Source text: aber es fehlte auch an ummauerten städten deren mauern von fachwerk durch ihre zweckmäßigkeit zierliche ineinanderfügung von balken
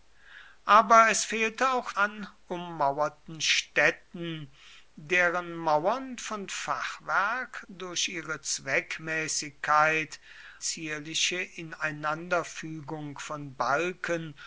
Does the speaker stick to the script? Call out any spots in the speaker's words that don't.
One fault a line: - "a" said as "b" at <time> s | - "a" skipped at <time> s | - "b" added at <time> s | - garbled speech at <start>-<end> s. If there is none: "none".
none